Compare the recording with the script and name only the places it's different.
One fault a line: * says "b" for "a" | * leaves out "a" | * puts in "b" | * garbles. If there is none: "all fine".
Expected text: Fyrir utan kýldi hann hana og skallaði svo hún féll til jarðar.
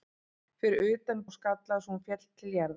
* leaves out "kýldi hann hana"